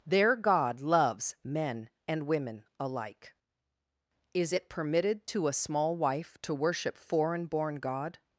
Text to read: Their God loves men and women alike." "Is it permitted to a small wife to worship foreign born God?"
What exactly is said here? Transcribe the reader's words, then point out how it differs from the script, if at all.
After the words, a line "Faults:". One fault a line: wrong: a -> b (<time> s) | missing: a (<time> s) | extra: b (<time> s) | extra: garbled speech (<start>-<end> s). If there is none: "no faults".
Their God loves men and women alike." "Is it permitted to a small wife to worship foreign born God?"
Faults:
no faults